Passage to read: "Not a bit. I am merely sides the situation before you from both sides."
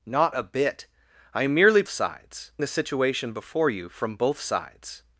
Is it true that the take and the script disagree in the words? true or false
false